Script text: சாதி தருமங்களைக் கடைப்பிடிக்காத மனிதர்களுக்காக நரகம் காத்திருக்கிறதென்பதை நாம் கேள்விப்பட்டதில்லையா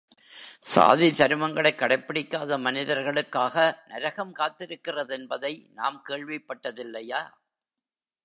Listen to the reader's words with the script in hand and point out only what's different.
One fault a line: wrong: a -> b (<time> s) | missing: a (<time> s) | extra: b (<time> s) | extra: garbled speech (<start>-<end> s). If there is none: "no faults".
no faults